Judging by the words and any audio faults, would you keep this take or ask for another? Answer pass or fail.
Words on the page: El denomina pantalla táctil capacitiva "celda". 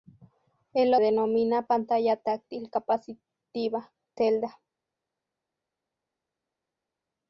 pass